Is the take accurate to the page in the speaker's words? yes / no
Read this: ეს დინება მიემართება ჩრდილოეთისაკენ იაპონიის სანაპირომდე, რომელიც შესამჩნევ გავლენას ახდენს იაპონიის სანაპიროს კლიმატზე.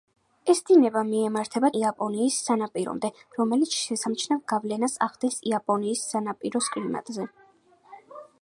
no